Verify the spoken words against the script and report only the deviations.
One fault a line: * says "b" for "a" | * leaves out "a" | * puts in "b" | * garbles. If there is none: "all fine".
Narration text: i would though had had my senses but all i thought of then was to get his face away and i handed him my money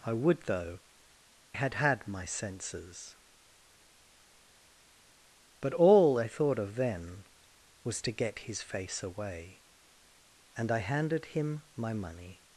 all fine